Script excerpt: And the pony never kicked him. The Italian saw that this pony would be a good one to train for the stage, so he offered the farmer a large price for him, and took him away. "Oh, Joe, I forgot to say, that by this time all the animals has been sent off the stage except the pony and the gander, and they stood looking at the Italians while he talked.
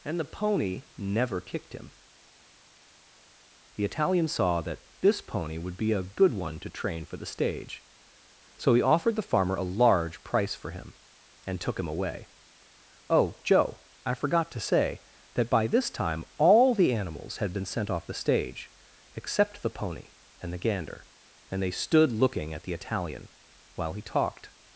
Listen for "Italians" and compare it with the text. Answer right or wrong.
wrong